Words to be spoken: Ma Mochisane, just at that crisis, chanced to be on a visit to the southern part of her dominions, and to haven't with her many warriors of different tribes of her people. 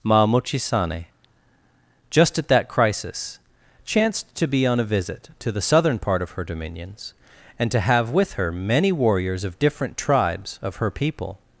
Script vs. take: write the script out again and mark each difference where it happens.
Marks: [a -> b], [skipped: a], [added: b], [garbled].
Ma Mochisane, just at that crisis, chanced to be on a visit to the southern part of her dominions, and to [haven't -> have] with her many warriors of different tribes of her people.